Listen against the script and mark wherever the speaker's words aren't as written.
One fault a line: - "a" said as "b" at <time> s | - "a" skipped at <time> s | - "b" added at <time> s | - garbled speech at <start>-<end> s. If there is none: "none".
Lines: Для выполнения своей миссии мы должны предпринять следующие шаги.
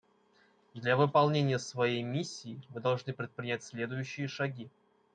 none